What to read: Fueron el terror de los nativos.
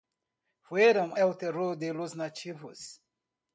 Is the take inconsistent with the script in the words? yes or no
no